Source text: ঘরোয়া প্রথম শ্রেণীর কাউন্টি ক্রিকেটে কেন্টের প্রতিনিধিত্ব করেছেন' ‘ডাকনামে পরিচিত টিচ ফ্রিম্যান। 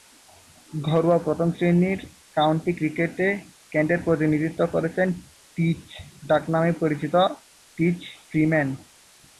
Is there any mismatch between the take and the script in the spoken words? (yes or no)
yes